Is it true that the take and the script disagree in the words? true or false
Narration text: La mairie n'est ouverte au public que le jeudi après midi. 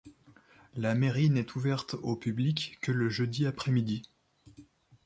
false